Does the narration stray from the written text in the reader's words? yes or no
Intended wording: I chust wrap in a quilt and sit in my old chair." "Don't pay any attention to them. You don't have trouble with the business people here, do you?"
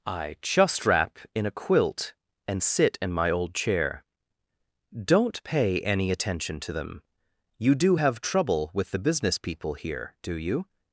yes